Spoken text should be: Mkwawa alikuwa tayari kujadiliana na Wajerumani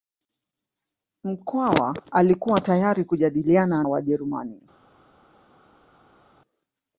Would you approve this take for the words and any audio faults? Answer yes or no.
no